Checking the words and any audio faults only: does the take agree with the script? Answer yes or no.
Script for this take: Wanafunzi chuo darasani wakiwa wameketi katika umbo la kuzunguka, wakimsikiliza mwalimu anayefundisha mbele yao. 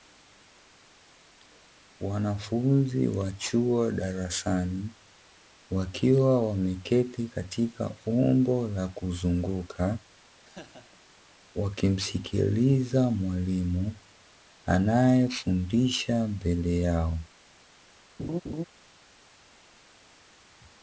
no